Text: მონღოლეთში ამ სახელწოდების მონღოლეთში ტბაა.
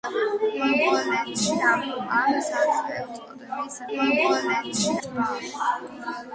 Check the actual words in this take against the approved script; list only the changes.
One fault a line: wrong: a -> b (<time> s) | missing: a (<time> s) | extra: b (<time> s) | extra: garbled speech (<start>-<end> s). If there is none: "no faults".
no faults